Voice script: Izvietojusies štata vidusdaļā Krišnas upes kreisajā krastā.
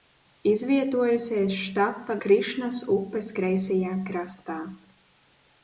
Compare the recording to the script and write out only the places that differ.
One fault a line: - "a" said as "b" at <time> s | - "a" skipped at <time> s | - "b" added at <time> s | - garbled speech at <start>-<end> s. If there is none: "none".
- "vidusdaļā" skipped at 2.1 s